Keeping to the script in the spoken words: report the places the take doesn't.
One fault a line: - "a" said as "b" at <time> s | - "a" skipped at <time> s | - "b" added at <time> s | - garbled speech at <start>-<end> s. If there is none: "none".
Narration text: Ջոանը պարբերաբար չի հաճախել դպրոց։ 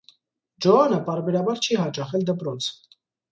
none